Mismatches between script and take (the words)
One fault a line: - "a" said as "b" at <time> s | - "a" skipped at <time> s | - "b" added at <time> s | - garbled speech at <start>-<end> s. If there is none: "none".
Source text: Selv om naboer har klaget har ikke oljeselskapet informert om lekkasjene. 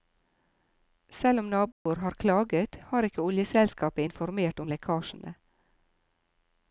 none